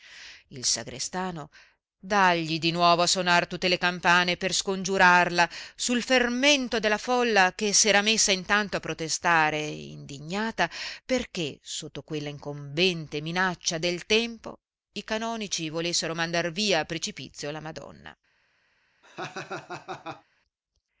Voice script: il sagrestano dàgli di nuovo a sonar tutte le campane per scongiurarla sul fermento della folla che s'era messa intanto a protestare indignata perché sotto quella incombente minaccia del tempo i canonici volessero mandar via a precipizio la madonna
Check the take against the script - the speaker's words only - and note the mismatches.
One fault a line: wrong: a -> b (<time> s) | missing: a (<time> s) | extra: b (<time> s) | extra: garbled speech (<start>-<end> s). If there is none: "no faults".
no faults